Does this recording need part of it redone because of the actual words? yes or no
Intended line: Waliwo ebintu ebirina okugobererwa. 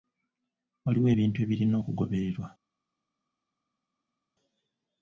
no